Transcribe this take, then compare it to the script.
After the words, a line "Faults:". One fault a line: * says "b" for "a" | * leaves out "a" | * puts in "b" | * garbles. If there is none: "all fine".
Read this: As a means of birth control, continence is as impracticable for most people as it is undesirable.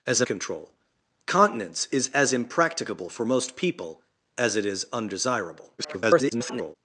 As a control, continence is as impracticable for most people as it is undesirable. [garbled]
Faults:
* leaves out "means of birth"
* garbles